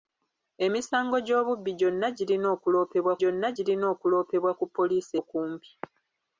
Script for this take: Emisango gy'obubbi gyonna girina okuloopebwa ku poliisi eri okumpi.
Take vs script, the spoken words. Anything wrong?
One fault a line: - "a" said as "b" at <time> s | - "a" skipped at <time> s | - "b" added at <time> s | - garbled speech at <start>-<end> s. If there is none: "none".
- "gyonna girina okuloopebwa" added at 3.2 s
- "eri" skipped at 5.1 s